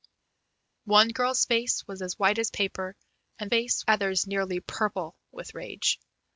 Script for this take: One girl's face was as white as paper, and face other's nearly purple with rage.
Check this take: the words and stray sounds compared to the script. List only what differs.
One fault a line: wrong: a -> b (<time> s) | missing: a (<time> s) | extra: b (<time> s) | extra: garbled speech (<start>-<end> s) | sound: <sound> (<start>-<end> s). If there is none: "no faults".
no faults